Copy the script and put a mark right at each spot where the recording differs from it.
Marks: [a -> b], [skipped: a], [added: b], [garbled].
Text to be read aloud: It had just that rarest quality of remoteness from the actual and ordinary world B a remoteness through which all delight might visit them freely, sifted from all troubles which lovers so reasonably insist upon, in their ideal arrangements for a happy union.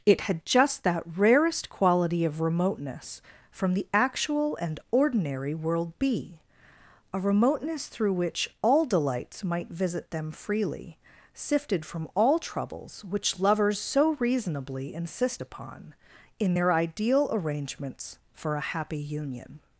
It had just that rarest quality of remoteness from the actual and ordinary world B a remoteness through which all [delight -> delights] might visit them freely, sifted from all troubles which lovers so reasonably insist upon, in their ideal arrangements for a happy union.